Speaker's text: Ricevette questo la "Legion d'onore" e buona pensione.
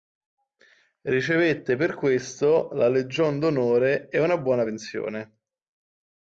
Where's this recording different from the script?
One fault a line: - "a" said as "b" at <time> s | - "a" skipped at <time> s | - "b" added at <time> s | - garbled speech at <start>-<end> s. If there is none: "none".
- "per" added at 1.8 s
- "una" added at 4.2 s